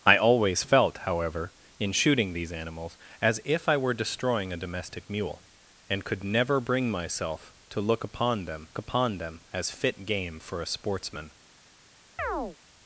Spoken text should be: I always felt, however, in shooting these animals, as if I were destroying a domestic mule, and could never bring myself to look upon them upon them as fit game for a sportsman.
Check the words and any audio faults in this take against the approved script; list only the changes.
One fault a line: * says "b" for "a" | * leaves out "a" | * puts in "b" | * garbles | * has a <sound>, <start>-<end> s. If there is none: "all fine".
* has a chirp, 12.2-12.6 s